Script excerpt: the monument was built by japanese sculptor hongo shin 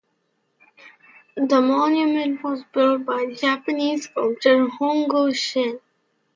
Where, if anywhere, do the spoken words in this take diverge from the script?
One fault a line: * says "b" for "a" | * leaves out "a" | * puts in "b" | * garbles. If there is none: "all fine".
all fine